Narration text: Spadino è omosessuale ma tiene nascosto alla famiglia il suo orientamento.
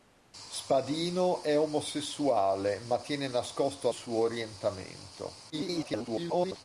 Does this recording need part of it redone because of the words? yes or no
yes